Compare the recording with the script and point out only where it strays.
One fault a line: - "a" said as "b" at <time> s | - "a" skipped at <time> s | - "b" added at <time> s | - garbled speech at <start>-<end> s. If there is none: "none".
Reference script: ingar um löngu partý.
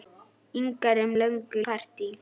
none